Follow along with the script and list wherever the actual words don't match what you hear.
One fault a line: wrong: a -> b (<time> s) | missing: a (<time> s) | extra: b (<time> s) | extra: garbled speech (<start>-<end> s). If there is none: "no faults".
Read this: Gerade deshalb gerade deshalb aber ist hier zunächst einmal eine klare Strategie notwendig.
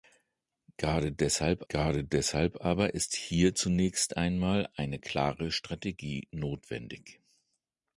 no faults